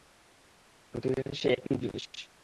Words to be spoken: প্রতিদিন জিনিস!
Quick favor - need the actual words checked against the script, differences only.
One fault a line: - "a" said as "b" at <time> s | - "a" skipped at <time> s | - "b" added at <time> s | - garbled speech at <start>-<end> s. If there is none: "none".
- "সেই একই" added at 1.3 s